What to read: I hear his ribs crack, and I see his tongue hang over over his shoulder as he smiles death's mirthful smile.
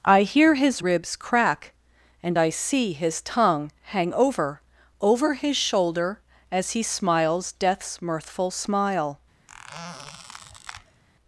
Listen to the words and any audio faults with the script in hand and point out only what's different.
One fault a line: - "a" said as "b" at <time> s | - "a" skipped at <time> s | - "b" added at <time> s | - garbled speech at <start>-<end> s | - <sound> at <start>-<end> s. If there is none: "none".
- squeak at 9.5-11.0 s